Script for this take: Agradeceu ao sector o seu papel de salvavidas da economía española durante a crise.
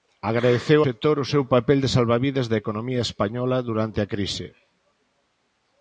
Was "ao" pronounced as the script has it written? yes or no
no